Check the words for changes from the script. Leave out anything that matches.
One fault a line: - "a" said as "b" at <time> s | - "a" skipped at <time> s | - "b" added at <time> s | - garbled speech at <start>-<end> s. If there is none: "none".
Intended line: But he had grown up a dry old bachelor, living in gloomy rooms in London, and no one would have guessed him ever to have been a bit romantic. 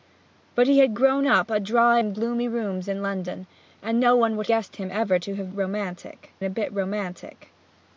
- "old bachelor living" skipped at 2.0 s
- "have" skipped at 4.5 s
- "been" said as "romantic" at 5.5 s